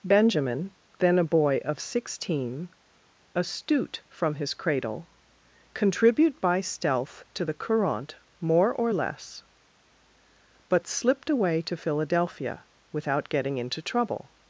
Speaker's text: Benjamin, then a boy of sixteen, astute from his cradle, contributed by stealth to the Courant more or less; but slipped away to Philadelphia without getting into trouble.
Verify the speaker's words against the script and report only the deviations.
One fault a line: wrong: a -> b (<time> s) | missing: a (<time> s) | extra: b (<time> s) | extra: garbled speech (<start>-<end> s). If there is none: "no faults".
wrong: contributed -> contribute (5.7 s)